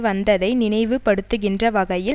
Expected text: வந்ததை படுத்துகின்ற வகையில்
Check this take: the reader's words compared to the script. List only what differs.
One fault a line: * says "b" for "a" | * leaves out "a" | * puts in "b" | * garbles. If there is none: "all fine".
* puts in "நினைவு"